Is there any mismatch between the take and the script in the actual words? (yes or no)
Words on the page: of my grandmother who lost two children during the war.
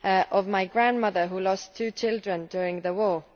no